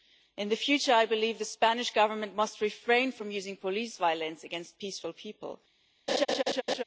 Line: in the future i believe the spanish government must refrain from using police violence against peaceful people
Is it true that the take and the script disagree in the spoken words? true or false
false